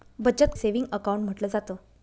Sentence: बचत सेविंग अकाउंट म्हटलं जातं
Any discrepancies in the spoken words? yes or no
no